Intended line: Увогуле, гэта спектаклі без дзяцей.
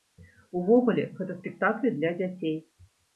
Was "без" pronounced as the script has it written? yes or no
no